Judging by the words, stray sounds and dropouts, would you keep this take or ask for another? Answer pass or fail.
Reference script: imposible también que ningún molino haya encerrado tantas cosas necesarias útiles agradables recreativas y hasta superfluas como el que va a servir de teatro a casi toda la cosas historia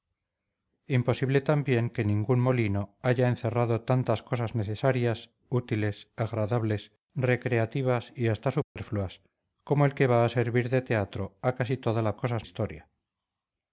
fail